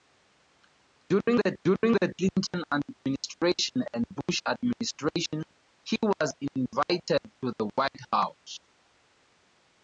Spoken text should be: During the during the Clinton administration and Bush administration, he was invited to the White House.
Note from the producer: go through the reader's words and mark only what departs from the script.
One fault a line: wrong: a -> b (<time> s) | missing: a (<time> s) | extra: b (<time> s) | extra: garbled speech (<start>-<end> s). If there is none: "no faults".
no faults